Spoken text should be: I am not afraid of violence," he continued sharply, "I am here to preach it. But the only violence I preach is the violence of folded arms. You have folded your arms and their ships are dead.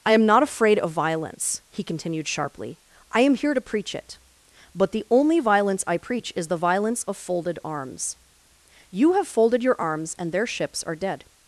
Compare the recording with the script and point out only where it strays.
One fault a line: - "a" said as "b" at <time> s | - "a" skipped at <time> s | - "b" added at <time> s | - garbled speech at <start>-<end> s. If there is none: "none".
none